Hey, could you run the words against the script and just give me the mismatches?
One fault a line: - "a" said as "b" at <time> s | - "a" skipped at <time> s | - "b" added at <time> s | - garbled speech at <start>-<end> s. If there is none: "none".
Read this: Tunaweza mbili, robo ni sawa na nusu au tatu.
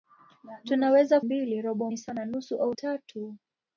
none